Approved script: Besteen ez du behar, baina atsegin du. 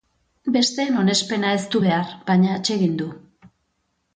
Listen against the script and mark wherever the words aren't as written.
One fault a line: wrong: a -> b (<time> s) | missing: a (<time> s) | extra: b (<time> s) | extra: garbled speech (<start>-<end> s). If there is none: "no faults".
extra: onespena (1.0 s)